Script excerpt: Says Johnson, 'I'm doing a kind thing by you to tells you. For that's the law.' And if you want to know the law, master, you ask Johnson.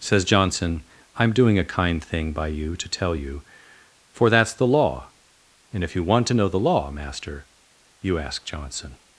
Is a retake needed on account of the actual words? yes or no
yes